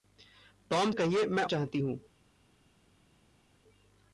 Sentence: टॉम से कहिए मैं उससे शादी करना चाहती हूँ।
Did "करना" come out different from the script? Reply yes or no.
yes